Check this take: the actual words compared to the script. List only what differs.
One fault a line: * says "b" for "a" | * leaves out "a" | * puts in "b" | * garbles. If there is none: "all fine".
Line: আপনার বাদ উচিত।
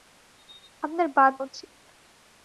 all fine